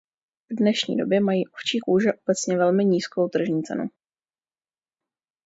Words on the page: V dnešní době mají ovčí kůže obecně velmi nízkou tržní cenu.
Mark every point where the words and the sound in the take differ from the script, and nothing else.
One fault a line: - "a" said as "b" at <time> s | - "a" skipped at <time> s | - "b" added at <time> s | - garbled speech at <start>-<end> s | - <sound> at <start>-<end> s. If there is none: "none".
none